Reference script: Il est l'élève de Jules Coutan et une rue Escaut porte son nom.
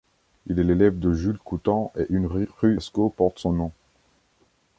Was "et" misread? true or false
false